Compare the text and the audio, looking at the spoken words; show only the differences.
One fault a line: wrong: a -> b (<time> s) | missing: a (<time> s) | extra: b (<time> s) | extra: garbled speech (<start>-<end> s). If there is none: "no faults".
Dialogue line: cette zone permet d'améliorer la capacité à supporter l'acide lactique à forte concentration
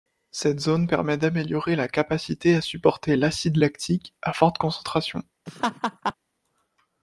no faults